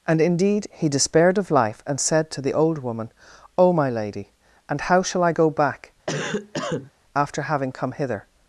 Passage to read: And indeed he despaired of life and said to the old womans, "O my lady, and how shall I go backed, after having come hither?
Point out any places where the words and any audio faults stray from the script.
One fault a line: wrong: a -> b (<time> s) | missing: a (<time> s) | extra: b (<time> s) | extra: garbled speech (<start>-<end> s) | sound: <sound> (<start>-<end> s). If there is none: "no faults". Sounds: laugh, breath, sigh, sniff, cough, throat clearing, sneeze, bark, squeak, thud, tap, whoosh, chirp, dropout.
wrong: womans -> woman (2.8 s)
wrong: backed -> back (5.5 s)
sound: cough (6.1-6.9 s)